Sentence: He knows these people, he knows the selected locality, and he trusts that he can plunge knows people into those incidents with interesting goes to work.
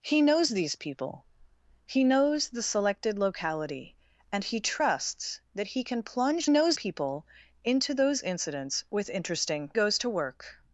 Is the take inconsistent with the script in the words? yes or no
no